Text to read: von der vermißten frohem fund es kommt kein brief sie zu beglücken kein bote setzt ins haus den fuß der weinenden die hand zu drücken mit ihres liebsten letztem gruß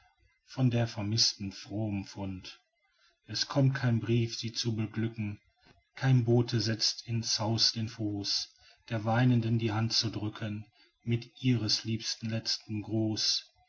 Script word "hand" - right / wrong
right